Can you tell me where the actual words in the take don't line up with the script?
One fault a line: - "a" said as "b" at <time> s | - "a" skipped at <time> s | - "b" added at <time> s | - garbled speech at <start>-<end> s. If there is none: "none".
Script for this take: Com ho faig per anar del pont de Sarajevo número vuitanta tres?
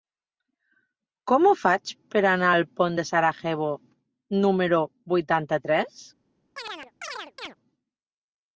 - "del" said as "al" at 2.5 s